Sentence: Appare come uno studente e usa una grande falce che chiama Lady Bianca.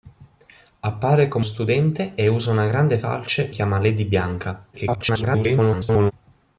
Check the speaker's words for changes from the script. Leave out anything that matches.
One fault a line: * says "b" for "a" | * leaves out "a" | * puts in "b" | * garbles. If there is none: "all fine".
* leaves out "uno"
* leaves out "che"
* garbles